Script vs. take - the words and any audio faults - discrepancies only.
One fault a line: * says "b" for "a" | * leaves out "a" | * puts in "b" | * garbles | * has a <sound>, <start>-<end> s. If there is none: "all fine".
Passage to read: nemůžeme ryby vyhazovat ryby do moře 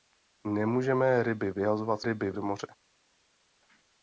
all fine